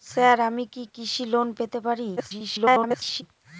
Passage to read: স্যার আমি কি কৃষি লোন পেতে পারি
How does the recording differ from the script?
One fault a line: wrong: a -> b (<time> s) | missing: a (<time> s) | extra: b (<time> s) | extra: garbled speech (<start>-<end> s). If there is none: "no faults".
extra: garbled speech (2.2-3.2 s)